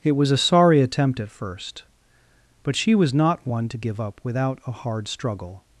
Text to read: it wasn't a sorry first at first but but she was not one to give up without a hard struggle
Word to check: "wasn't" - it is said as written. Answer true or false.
false